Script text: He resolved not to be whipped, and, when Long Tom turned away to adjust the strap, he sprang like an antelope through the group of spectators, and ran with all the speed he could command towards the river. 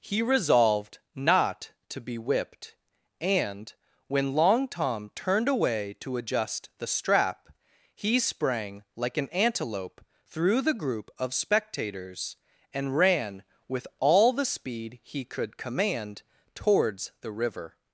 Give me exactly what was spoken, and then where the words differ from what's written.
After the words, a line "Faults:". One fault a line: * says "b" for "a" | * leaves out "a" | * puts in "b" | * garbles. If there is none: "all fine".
He resolved not to be whipped, and, when Long Tom turned away to adjust the strap, he sprang like an antelope through the group of spectators, and ran with all the speed he could command towards the river.
Faults:
all fine